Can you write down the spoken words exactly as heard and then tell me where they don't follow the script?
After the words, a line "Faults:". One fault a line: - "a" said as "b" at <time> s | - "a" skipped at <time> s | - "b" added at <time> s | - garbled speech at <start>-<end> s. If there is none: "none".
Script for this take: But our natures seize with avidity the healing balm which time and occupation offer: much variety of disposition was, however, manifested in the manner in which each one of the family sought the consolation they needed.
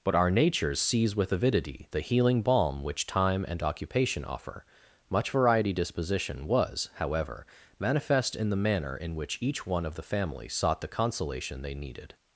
But our natures seize with avidity the healing balm which time and occupation offer: much variety disposition was, however, manifest in the manner in which each one of the family sought the consolation they needed.
Faults:
- "of" skipped at 5.7 s
- "manifested" said as "manifest" at 7.8 s